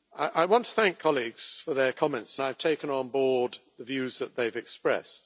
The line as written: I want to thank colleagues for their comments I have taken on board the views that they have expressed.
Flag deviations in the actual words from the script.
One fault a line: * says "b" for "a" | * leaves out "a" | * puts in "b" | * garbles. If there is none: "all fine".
all fine